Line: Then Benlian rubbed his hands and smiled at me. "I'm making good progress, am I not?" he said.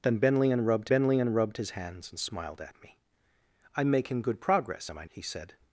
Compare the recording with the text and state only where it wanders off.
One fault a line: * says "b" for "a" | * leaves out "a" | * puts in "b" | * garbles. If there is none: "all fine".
* puts in "Benlian rubbed"
* leaves out "not"